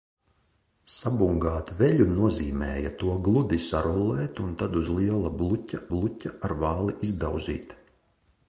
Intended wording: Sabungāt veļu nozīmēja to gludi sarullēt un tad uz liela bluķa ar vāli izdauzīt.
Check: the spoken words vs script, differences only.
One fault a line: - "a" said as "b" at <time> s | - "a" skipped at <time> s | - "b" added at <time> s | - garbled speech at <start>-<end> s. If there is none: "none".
- "bluķa" added at 5.9 s